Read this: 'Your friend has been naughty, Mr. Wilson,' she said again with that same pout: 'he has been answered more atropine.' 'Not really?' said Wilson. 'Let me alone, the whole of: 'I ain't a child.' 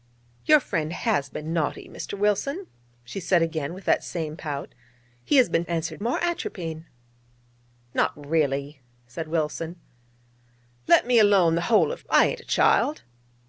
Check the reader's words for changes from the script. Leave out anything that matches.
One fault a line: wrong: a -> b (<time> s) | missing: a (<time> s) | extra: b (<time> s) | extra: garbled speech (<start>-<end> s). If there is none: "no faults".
no faults